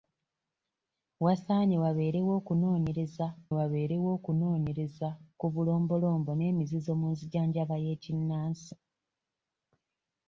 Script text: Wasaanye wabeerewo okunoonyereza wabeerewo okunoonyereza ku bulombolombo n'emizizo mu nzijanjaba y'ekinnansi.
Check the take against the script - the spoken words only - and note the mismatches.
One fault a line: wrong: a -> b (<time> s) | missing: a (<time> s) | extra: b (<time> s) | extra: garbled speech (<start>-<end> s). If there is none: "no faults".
no faults